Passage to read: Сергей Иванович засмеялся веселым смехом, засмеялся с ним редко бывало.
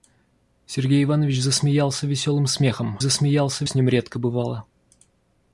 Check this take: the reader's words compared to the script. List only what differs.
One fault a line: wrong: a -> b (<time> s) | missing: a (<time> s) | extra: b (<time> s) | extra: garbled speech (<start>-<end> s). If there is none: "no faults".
no faults